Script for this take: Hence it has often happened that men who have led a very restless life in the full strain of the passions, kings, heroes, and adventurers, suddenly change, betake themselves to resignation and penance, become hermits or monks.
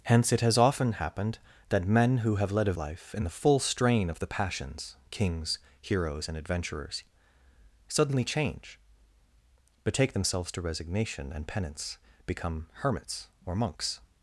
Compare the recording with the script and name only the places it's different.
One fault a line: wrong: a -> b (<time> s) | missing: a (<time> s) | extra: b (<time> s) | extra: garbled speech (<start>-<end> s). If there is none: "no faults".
missing: very restless (2.7 s)